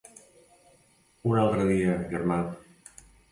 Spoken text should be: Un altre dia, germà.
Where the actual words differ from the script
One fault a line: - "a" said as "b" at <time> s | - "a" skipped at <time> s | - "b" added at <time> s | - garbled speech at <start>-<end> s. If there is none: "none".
none